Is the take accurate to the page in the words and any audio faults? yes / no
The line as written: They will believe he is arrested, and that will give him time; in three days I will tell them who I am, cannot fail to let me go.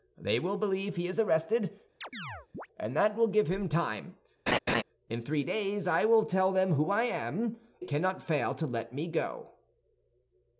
no